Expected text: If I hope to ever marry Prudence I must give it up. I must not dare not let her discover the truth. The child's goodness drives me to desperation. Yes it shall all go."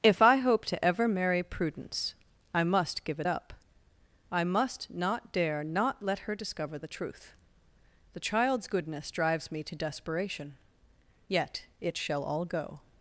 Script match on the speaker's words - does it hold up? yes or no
no